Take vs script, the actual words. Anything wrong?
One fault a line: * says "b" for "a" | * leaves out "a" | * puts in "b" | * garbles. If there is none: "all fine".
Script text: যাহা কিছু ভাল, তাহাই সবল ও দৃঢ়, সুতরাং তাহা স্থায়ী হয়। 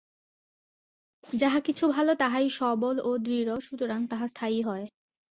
all fine